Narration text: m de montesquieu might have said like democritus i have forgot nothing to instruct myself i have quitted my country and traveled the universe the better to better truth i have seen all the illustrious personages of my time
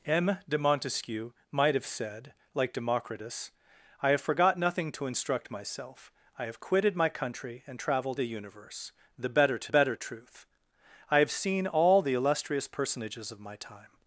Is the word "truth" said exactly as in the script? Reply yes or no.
yes